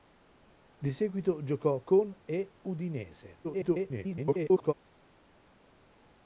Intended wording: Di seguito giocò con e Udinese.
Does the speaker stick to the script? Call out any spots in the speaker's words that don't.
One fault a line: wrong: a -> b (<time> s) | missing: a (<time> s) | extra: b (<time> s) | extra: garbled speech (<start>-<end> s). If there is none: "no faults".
extra: garbled speech (3.4-4.7 s)